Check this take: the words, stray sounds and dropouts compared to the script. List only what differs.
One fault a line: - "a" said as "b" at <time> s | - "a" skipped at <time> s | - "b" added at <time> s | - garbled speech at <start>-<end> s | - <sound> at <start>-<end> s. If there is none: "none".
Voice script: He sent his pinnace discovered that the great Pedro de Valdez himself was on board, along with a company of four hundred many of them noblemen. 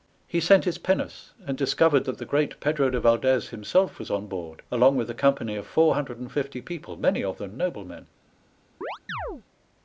- "and" added at 1.4 s
- "and fifty people" added at 6.2 s
- chirp at 8.8-9.4 s